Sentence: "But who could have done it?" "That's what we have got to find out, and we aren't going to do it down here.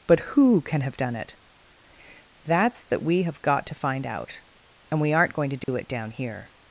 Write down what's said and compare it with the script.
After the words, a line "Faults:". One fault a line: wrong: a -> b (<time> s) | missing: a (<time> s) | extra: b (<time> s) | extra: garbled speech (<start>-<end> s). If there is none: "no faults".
"But who can have done it?" "That's that we have got to find out, and we aren't going to do it down here.
Faults:
wrong: could -> can (0.6 s)
wrong: what -> that (2.9 s)